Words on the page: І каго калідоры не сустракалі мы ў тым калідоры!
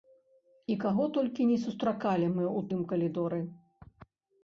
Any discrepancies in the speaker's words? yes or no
yes